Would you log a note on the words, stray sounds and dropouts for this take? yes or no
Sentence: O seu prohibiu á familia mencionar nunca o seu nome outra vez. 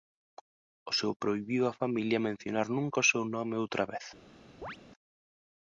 yes